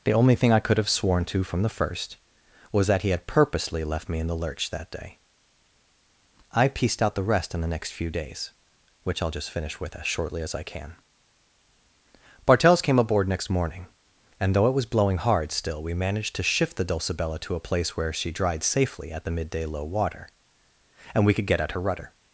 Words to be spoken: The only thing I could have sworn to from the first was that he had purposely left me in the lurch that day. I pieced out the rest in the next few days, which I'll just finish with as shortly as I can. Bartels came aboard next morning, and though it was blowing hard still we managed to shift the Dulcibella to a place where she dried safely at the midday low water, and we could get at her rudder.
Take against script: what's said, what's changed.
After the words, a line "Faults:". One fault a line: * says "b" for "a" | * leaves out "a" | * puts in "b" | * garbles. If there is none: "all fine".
The only thing I could have sworn to from the first was that he had purposely left me in the lurch that day. I pieced out the rest in the next few days, which I'll just finish with as shortly as I can. Bartels came aboard next morning, and though it was blowing hard still we managed to shift the Dulcibella to a place where she dried safely at the midday low water, and we could get at her rudder.
Faults:
all fine